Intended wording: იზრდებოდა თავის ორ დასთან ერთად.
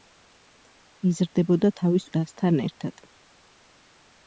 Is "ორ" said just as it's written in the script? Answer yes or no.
no